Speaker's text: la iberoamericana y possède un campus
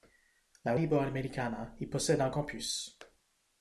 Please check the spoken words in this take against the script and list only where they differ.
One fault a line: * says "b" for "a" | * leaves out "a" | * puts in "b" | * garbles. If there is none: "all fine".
all fine